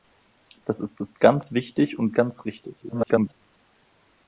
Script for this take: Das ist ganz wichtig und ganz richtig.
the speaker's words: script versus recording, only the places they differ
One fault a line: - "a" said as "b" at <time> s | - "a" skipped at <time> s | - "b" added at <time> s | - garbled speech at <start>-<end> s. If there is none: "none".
- "ist" added at 1.0 s
- garbled speech at 2.8-3.3 s